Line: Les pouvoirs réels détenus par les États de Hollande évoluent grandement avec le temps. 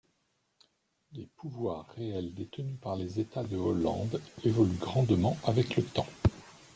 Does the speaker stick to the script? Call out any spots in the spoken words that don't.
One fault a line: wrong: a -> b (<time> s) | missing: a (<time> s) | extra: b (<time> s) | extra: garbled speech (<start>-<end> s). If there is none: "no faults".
no faults